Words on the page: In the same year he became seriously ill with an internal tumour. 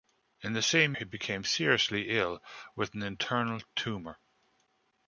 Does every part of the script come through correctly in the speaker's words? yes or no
no